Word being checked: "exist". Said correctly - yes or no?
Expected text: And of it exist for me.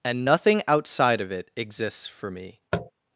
no